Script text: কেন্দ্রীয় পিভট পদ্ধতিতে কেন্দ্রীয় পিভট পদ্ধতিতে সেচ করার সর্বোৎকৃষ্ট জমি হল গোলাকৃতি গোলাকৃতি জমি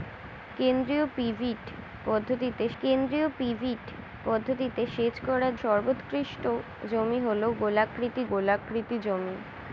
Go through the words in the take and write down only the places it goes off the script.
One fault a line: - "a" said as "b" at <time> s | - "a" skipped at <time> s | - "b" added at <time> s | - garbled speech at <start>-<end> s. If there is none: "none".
none